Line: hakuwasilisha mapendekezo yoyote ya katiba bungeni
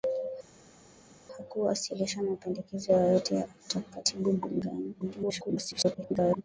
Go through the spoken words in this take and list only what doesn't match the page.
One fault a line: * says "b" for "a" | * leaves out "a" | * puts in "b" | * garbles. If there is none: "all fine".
* garbles